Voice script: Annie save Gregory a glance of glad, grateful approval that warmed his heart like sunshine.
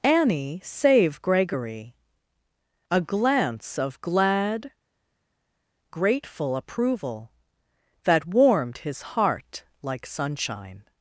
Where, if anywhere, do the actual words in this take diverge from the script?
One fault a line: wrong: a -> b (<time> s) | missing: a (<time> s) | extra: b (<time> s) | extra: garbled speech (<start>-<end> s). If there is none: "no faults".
no faults